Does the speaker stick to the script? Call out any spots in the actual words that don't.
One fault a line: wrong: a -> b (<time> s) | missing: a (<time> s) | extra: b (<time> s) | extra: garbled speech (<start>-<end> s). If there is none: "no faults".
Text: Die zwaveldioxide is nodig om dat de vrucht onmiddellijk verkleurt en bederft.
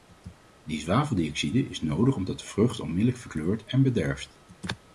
no faults